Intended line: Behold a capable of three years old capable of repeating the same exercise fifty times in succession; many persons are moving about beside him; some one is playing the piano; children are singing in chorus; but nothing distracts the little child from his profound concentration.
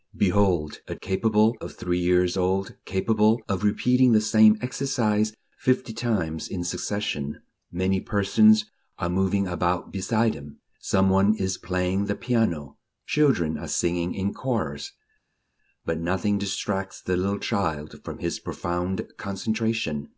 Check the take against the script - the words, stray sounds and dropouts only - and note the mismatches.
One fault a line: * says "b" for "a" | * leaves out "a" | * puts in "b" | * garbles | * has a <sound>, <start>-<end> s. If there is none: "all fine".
all fine